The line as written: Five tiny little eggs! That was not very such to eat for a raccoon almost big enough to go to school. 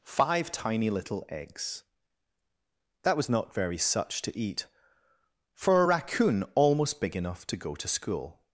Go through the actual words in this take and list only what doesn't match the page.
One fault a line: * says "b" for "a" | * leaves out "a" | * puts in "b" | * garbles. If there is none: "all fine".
all fine